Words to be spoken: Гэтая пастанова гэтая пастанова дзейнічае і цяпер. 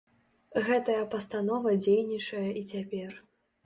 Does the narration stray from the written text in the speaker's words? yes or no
yes